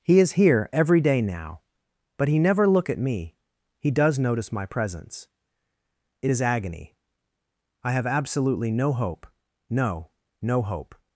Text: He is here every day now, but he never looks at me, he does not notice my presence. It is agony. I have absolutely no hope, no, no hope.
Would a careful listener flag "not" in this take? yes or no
yes